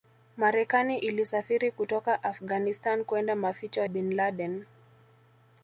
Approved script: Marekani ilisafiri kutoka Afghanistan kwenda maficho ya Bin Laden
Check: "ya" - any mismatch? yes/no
yes